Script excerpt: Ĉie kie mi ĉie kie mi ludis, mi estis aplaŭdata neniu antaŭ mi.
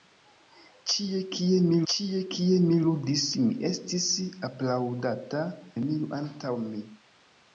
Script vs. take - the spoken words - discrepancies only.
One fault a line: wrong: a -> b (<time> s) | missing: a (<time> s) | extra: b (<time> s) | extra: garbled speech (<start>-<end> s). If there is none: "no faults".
no faults